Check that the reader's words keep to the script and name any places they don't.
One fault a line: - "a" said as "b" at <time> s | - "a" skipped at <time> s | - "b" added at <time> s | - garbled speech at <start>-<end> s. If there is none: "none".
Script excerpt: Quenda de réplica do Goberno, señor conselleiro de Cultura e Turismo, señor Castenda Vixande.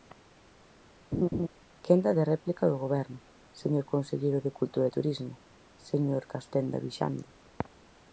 none